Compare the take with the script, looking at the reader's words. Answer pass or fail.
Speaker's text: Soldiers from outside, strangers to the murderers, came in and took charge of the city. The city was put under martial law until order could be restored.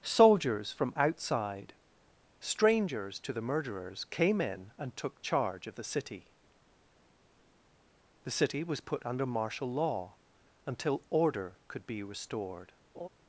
pass